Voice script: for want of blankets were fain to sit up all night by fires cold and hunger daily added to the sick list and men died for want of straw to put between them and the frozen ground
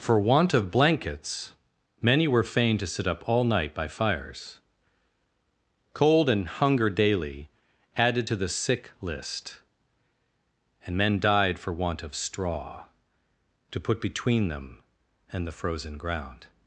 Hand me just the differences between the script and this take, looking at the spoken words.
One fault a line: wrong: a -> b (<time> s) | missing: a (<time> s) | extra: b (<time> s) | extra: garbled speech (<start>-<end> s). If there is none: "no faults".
extra: many (2.0 s)